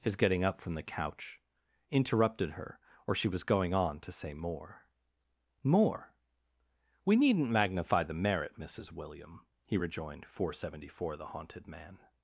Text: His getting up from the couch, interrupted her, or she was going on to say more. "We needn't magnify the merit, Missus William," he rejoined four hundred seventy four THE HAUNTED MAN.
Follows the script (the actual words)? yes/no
no